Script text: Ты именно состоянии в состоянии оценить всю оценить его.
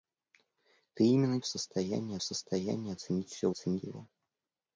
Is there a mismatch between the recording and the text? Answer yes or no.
no